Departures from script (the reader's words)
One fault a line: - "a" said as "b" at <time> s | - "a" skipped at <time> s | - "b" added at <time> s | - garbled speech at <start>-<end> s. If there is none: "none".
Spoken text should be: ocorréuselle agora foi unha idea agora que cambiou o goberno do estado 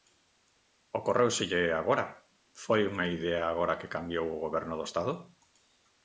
none